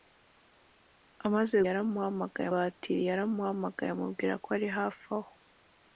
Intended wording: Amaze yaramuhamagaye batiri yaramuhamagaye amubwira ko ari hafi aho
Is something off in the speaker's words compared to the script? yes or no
no